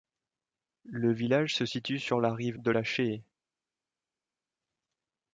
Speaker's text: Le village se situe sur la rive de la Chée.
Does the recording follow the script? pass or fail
pass